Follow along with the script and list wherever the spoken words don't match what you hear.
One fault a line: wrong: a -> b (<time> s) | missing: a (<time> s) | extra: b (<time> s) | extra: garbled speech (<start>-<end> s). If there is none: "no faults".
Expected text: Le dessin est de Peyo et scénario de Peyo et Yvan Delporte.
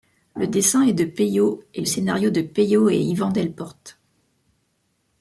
no faults